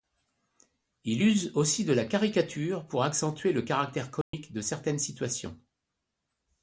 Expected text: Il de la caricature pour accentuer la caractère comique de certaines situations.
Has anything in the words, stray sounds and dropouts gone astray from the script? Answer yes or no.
yes